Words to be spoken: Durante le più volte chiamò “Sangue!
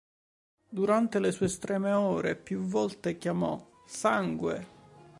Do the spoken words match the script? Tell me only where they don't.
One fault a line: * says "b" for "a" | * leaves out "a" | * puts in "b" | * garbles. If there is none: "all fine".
* puts in "sue estreme ore"